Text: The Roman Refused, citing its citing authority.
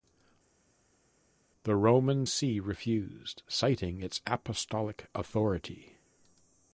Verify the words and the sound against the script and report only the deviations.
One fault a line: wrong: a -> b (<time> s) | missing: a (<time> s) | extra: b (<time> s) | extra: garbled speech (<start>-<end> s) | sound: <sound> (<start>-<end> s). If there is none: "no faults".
extra: See (2.2 s)
wrong: citing -> apostolic (4.3 s)